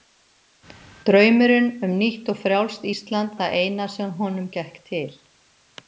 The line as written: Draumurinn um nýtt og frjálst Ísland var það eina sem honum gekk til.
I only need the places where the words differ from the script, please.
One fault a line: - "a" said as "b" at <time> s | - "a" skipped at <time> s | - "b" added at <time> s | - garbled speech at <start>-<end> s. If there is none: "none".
- "var" skipped at 3.3 s